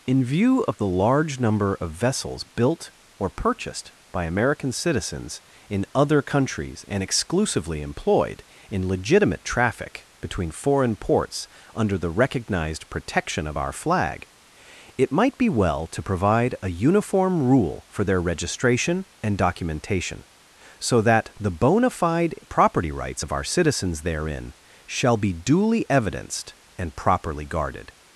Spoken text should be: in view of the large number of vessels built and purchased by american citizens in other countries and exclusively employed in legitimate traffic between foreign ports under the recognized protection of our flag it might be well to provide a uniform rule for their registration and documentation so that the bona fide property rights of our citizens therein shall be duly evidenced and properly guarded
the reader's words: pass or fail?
fail